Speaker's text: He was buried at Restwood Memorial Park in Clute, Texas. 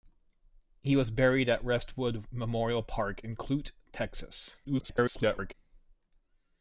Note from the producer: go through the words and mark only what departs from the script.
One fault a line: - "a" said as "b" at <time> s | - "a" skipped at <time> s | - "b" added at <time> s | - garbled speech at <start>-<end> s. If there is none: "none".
- garbled speech at 4.6-5.5 s